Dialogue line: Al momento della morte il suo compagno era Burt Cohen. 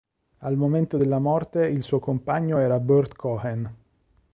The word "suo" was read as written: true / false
true